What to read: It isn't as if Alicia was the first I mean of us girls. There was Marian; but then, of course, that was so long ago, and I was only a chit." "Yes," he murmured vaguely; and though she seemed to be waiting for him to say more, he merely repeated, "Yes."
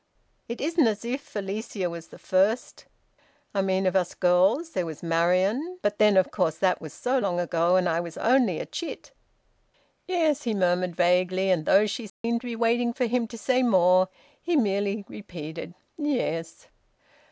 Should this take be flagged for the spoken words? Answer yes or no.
no